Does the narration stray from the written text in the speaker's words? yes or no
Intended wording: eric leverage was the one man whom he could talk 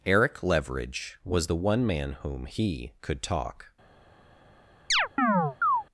no